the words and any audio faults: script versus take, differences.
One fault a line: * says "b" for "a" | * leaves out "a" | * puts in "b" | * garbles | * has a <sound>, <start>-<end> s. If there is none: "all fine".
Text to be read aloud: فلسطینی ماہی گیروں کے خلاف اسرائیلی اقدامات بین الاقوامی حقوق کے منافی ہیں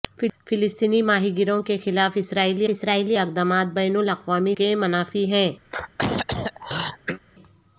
* puts in "اسرائیلی"
* leaves out "حقوق"
* has a throat clearing, 5.6-7.2 s